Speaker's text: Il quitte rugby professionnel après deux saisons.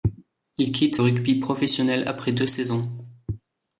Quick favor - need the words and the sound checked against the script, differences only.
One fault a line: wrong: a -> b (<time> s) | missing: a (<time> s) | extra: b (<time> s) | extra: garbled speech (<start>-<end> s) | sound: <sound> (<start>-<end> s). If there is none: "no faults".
no faults